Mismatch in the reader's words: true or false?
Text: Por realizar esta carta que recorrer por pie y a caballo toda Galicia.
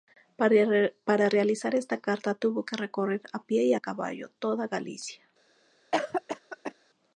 true